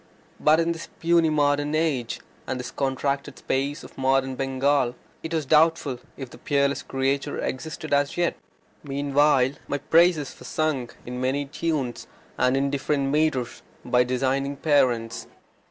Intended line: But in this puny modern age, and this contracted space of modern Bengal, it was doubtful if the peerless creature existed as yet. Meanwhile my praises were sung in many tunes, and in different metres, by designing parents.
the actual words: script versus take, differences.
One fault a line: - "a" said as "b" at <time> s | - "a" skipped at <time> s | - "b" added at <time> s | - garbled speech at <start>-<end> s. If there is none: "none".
none